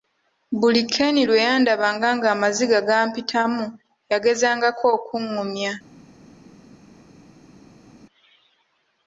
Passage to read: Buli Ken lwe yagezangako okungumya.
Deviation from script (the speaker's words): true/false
true